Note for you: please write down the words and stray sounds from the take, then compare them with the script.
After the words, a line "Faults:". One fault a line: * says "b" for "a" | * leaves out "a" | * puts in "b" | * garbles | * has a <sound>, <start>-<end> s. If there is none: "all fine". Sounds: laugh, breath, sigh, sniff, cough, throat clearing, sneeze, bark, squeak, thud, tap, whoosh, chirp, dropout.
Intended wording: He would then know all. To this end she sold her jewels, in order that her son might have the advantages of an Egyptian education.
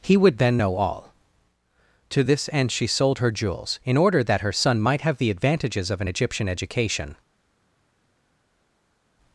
He would then know all. To this end she sold her jewels, in order that her son might have the advantages of an Egyptian education.
Faults:
all fine